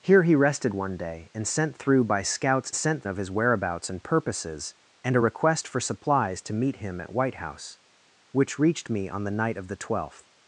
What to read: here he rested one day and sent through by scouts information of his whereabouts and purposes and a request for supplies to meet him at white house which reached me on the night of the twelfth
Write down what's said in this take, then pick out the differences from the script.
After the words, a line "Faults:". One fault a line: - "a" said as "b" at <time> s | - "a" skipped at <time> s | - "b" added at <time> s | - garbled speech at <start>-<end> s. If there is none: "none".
here he rested one day and sent through by scouts sent of his whereabouts and purposes and a request for supplies to meet him at white house which reached me on the night of the twelfth
Faults:
- "information" said as "sent" at 2.7 s